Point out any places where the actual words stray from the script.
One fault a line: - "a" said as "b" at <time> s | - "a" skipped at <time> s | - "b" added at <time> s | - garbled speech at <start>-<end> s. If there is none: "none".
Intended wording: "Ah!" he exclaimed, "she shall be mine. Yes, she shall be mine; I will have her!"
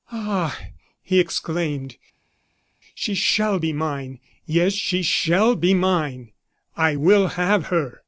none